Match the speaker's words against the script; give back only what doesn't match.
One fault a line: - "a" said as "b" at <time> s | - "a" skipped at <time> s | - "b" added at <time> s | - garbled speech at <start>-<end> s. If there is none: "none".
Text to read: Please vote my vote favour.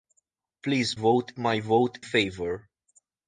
none